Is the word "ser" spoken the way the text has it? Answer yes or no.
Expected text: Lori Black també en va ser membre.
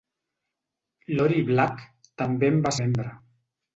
no